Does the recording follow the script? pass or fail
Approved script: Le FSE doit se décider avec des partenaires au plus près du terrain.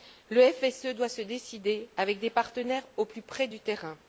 pass